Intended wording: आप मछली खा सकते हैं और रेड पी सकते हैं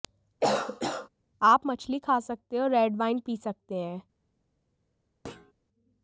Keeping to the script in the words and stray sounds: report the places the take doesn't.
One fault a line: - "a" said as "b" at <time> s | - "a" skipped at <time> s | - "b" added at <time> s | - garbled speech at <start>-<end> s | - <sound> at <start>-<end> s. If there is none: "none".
- cough at 0.4-1.1 s
- "वाइन" added at 3.0 s
- thud at 5.2-5.5 s